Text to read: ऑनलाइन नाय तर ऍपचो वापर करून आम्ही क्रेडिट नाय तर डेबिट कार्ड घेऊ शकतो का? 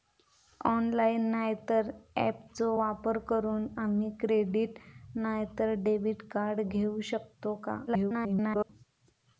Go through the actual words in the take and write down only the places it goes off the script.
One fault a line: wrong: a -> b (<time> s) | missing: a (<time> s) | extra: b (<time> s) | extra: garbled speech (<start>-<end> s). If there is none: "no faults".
extra: garbled speech (7.9-8.7 s)